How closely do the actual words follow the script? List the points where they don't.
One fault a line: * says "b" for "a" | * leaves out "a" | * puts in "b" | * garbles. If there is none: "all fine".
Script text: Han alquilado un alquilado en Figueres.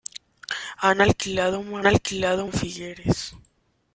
all fine